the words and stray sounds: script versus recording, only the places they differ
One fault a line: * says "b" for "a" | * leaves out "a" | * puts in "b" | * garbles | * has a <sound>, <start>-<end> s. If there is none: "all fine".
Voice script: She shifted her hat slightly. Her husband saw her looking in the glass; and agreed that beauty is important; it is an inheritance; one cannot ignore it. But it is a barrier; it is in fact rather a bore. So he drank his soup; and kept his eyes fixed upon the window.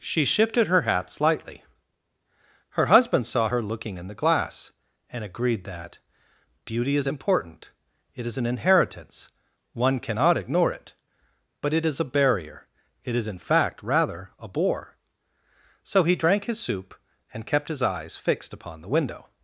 all fine